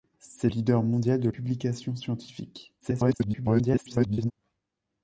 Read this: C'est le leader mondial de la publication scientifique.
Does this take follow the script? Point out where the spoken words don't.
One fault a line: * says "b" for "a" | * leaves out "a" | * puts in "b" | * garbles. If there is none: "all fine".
* leaves out "le"
* leaves out "la"
* garbles